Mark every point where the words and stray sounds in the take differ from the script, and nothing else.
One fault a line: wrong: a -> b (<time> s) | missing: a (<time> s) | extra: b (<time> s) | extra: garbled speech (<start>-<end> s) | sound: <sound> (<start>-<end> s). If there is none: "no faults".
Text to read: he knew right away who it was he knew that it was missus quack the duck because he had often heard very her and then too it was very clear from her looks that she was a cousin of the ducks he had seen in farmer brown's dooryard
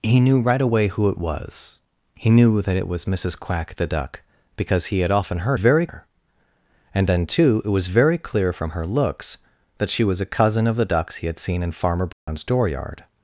sound: dropout (12.1-12.3 s)